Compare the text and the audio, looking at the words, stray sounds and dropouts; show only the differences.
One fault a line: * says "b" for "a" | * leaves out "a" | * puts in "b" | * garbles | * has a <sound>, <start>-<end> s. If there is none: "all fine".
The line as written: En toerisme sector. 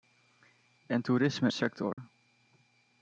* has a dropout, 1.9-2.0 s